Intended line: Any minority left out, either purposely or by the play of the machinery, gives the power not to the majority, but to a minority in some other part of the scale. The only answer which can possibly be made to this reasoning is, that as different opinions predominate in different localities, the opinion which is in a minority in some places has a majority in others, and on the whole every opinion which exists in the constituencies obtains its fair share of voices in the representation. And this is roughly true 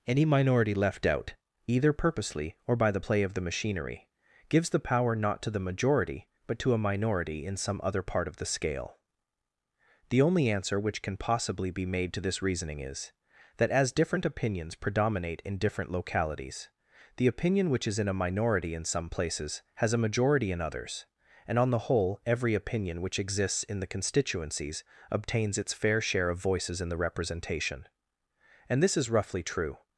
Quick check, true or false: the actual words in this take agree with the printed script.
true